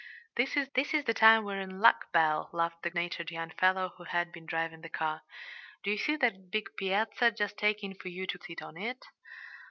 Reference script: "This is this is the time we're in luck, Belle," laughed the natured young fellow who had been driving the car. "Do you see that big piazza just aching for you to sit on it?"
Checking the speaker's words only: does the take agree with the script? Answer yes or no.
yes